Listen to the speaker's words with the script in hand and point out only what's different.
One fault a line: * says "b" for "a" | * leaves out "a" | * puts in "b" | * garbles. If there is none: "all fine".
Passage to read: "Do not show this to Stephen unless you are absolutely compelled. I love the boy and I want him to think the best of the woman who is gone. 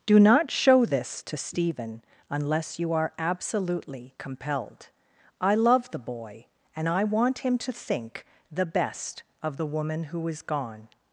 all fine